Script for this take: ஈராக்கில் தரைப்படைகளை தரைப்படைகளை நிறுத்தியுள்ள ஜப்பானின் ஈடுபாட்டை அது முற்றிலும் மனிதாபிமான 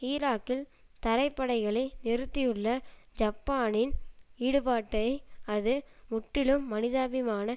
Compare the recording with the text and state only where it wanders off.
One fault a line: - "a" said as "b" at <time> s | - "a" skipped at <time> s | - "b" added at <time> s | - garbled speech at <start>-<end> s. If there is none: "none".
- "தரைப்படைகளை" skipped at 1.9 s